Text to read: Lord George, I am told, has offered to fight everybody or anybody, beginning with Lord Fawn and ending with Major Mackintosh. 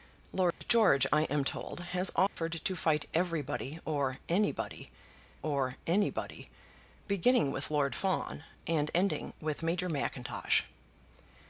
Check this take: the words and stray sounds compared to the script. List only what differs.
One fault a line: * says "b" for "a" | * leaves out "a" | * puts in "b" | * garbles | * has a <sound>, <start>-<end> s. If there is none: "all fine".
* has a dropout, 0.5-0.6 s
* has a dropout, 2.3-2.4 s
* puts in "or anybody"